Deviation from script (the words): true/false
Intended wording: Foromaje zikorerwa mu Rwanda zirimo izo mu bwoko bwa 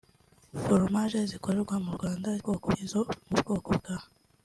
true